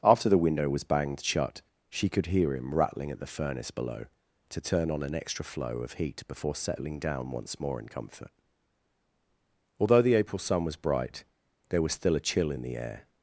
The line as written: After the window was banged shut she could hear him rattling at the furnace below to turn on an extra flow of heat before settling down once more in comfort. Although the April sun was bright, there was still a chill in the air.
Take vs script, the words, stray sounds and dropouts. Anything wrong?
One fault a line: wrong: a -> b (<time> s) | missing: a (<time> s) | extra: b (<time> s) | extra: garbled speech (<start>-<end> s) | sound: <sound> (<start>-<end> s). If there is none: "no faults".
no faults